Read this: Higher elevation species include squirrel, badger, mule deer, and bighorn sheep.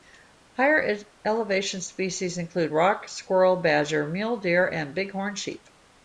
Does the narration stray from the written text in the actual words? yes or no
yes